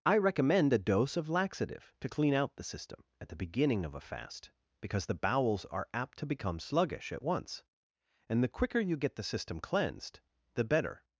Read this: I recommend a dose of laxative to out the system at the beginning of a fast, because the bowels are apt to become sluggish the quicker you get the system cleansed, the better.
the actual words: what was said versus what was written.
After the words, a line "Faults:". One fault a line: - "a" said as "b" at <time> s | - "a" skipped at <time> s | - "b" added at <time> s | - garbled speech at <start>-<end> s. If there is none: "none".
I recommend a dose of laxative to clean out the system at the beginning of a fast, because the bowels are apt to become sluggish at once, and the quicker you get the system cleansed, the better.
Faults:
- "clean" added at 2.1 s
- "at once and" added at 7.1 s